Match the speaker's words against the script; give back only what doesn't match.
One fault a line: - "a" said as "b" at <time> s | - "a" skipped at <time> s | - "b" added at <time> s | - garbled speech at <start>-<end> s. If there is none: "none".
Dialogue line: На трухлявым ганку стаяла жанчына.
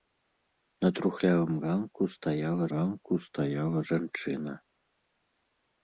- "ганку стаяла" added at 2.7 s